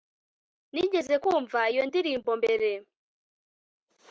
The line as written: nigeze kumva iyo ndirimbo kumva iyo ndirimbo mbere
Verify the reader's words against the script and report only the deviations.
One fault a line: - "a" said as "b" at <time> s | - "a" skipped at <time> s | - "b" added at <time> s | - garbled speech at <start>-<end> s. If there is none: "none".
- "kumva iyo ndirimbo" skipped at 2.3 s